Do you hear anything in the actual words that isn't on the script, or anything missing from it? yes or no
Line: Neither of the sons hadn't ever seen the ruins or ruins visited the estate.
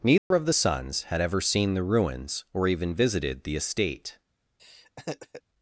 yes